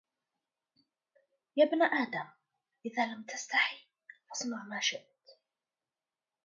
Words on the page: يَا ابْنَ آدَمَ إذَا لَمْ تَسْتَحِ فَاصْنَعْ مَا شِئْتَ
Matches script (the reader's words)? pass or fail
pass